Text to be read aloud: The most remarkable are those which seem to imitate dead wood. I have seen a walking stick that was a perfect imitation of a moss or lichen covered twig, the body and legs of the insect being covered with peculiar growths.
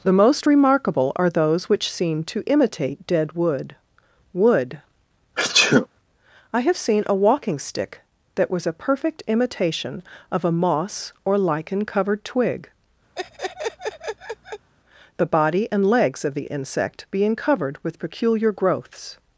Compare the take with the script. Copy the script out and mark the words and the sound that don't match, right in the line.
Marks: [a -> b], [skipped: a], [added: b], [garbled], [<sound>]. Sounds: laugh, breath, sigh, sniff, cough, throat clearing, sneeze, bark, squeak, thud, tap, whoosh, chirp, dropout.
The most remarkable are those which seem to imitate dead wood. [added: wood] [sneeze] I have seen a walking stick that was a perfect imitation of a moss or lichen covered twig, [laugh] the body and legs of the insect being covered with peculiar growths.